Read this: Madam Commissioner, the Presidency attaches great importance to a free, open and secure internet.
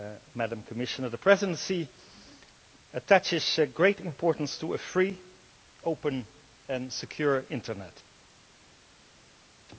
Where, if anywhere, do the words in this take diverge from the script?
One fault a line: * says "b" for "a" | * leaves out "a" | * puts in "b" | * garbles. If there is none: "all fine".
all fine